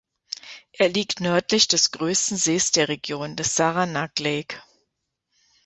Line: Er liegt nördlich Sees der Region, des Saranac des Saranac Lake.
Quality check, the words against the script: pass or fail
fail